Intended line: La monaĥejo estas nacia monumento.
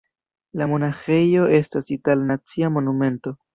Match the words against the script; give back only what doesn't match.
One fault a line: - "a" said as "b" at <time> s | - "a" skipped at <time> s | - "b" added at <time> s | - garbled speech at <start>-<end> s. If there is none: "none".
- "itala" added at 2.0 s